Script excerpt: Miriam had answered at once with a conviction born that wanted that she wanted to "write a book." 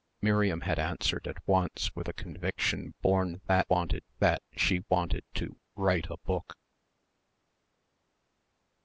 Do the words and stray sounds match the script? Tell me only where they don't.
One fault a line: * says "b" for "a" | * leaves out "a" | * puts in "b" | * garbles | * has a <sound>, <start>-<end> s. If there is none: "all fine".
all fine